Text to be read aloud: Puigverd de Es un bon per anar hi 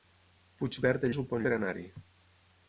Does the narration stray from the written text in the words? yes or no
no